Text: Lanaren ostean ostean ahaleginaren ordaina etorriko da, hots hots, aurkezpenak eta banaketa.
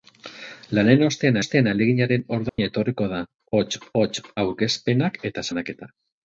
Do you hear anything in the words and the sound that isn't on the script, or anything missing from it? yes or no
yes